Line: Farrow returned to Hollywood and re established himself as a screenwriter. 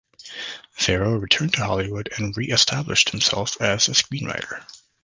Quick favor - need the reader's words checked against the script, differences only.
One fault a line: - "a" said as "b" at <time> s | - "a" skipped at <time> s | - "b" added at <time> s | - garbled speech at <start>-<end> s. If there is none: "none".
none